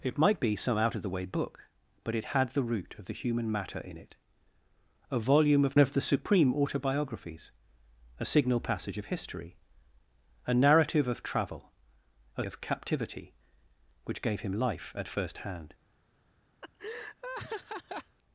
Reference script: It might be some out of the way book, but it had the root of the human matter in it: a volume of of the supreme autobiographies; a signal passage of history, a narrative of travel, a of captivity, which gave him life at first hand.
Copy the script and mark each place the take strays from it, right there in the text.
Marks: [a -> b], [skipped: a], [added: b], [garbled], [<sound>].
It might be some out of the way book, but it had the root of the human matter in it: a volume of of the supreme autobiographies; a signal passage of history, a narrative of travel, a of captivity, which gave him life at first hand. [laugh]